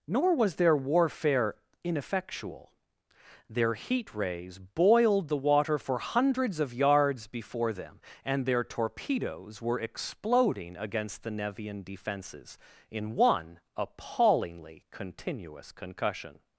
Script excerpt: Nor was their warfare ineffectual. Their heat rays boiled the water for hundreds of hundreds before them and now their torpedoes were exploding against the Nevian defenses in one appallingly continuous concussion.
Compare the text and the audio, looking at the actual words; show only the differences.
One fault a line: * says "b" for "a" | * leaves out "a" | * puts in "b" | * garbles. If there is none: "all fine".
* says "yards" for "hundreds"
* leaves out "now"